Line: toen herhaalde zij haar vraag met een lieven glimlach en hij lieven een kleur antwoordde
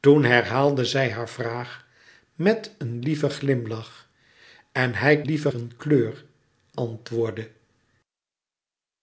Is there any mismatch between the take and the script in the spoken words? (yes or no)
no